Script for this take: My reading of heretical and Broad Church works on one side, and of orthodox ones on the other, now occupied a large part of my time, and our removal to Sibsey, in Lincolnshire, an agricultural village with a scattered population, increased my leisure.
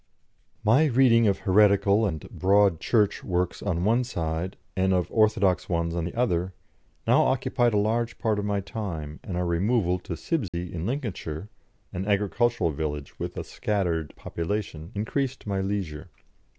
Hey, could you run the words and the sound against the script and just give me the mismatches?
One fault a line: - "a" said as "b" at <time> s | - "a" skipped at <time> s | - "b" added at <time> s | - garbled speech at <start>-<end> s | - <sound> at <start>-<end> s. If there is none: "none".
- dropout at 10.5-10.5 s